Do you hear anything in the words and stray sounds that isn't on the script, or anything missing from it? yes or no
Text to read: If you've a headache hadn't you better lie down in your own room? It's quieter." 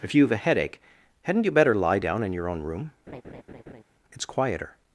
yes